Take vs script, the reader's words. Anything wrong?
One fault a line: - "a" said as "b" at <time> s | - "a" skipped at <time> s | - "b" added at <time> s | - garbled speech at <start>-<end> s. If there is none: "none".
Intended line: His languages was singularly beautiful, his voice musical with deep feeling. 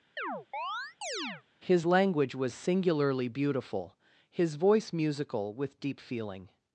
- "languages" said as "language" at 1.8 s